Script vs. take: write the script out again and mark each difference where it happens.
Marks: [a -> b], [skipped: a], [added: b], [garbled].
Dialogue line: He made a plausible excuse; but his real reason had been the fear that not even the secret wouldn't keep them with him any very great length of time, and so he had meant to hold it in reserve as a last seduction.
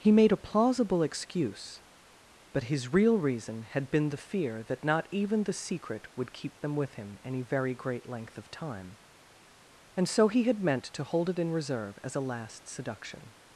He made a plausible excuse; but his real reason had been the fear that not even the secret [wouldn't -> would] keep them with him any very great length of time, and so he had meant to hold it in reserve as a last seduction.